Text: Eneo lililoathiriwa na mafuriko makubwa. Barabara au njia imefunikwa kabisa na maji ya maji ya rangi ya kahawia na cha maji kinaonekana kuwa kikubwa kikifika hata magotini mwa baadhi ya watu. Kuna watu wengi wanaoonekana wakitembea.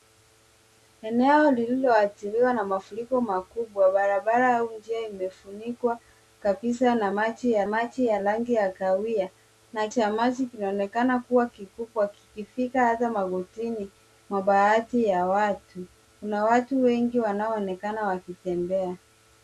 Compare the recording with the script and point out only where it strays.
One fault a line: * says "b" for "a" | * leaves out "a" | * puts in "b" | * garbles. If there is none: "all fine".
all fine